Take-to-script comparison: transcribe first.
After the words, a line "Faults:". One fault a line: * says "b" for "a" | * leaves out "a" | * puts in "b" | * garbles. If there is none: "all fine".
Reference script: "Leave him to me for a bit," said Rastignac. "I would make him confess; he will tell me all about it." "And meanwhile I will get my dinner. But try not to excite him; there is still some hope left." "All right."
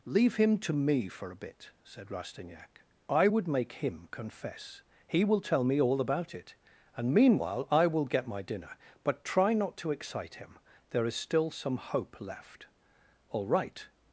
"Leave him to me for a bit," said Rastignac. "I would make him confess; he will tell me all about it." "And meanwhile I will get my dinner. But try not to excite him; there is still some hope left." "All right."
Faults:
all fine